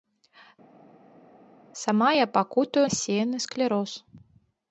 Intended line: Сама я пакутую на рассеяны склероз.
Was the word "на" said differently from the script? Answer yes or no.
yes